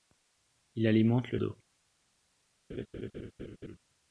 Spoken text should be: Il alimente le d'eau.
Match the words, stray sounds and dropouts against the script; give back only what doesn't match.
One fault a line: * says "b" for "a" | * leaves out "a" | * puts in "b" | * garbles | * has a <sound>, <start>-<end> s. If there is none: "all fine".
* has a laugh, 2.7-3.8 s